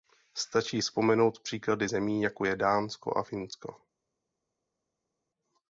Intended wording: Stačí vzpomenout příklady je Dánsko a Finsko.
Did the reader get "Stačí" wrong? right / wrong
right